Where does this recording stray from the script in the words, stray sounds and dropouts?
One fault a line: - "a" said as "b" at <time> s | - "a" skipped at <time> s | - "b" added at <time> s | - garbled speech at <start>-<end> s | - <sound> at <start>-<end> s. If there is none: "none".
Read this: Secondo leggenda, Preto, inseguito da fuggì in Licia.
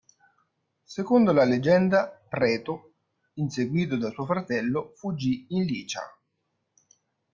- "la" added at 1.3 s
- "suo fratello" added at 4.1 s